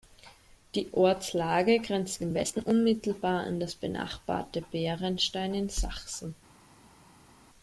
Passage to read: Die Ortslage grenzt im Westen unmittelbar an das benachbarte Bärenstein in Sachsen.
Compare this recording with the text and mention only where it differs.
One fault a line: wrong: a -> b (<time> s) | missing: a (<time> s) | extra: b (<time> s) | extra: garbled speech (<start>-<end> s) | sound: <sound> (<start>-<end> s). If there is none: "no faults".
no faults